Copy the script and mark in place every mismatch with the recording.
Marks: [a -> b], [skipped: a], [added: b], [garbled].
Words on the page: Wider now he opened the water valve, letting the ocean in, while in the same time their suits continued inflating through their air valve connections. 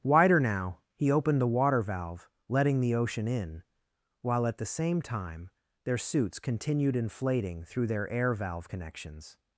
Wider now he opened the water valve, letting the ocean in, while [in -> at] the same time their suits continued inflating through their air valve connections.